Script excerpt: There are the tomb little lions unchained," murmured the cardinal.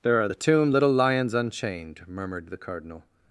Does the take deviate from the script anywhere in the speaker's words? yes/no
no